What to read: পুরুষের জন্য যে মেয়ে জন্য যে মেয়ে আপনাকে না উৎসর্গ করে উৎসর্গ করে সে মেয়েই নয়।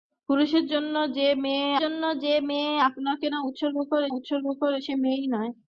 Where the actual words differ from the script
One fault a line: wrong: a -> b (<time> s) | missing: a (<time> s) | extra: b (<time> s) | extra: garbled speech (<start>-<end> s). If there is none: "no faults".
no faults